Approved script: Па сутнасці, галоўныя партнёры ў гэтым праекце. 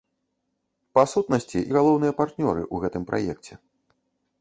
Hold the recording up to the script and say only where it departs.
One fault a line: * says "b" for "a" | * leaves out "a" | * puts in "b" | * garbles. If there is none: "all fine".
all fine